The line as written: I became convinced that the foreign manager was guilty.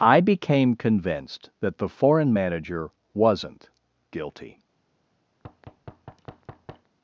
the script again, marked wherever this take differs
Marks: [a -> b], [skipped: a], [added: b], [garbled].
I became convinced that the foreign manager [was -> wasn't] guilty.